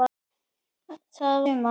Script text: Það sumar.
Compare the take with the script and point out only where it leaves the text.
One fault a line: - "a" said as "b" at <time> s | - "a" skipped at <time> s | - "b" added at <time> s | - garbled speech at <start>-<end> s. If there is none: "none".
none